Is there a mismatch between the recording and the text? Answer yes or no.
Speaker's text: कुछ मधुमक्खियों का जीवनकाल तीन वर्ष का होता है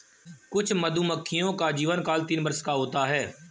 no